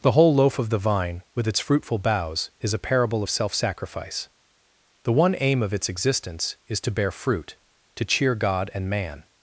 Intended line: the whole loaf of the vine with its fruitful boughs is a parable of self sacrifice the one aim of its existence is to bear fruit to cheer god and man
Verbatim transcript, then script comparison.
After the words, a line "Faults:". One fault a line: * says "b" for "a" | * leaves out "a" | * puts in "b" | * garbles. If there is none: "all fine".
the whole loaf of the vine with its fruitful boughs is a parable of self sacrifice the one aim of its existence is to bear fruit to cheer god and man
Faults:
all fine